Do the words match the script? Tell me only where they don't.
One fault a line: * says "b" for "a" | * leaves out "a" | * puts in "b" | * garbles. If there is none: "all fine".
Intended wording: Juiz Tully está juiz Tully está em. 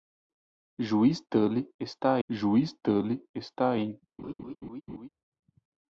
all fine